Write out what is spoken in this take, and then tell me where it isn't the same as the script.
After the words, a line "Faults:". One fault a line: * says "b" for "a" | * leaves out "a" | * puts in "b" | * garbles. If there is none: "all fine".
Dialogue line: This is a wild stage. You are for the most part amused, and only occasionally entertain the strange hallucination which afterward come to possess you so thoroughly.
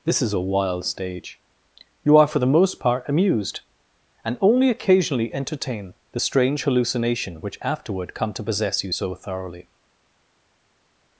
This is a wild stage. You are for the most part amused, and only occasionally entertain the strange hallucination which afterward come to possess you so thoroughly.
Faults:
all fine